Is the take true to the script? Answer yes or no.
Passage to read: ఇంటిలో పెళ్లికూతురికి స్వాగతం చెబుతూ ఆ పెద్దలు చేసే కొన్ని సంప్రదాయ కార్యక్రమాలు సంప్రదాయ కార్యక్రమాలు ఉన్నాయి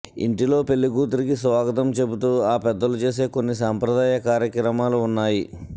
no